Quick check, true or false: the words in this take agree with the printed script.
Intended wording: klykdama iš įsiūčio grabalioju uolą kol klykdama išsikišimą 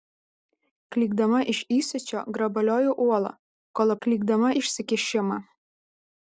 true